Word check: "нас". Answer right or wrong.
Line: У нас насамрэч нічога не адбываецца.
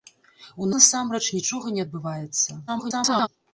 wrong